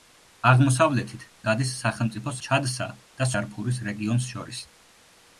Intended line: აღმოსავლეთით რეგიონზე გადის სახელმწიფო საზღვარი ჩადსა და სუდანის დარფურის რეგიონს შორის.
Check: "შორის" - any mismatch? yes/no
no